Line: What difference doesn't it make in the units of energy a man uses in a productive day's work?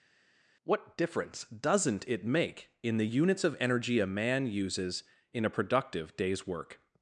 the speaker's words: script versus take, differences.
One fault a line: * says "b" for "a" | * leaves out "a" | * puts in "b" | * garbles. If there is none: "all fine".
all fine